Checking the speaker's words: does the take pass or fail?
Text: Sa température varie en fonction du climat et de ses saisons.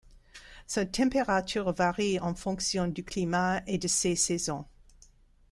pass